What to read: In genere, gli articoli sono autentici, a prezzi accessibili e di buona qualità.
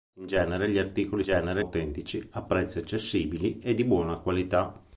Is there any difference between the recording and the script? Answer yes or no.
yes